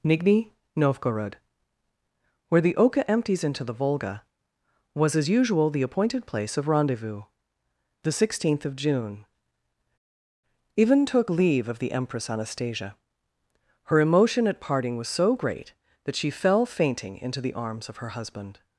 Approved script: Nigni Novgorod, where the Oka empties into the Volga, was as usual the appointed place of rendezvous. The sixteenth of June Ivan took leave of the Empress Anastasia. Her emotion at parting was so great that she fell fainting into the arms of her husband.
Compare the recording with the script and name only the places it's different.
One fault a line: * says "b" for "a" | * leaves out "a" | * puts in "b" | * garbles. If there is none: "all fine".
all fine